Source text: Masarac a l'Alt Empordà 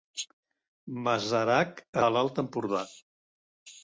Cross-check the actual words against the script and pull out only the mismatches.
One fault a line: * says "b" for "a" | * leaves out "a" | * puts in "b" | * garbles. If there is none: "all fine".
all fine